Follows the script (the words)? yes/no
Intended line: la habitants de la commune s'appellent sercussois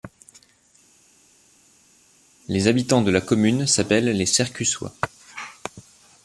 no